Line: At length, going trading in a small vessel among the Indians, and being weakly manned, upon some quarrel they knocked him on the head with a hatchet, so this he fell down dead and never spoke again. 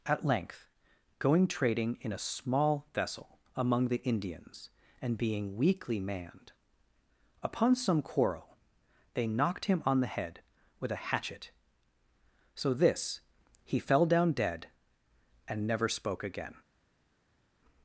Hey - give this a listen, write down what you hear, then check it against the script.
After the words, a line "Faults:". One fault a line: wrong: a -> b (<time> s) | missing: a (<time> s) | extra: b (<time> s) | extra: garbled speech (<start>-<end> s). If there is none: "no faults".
At length, going trading in a small vessel among the Indians, and being weakly manned, upon some quarrel they knocked him on the head with a hatchet, so this he fell down dead and never spoke again.
Faults:
no faults